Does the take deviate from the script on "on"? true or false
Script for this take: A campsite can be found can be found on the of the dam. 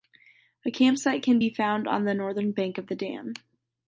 true